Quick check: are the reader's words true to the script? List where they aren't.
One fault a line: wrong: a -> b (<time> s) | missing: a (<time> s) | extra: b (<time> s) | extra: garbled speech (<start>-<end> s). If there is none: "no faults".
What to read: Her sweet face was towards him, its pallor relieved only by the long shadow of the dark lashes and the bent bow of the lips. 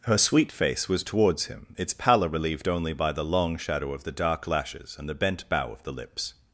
no faults